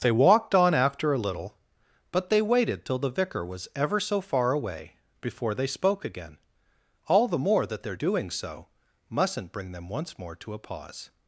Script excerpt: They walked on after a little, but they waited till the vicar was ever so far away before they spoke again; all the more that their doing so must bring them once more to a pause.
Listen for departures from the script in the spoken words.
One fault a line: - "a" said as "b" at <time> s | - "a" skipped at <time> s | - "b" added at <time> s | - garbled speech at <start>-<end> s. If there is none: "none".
- "must" said as "mustn't" at 9.1 s